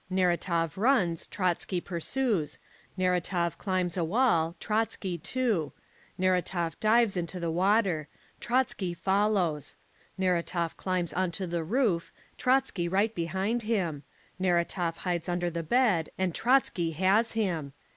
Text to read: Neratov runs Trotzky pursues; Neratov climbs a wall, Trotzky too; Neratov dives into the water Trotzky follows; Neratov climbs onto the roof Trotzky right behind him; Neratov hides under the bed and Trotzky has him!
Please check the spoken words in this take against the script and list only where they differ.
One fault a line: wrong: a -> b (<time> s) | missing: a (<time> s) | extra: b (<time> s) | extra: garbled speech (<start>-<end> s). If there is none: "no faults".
no faults